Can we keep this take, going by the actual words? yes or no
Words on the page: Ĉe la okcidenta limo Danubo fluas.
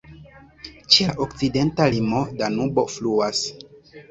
yes